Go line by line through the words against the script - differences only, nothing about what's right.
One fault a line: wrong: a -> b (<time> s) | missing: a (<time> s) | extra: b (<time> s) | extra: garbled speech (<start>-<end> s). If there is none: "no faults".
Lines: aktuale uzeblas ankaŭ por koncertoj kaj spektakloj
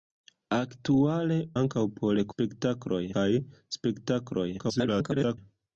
missing: uzeblas (1.4 s)
wrong: koncertoj -> spektakloj (2.3 s)
extra: garbled speech (4.6-5.4 s)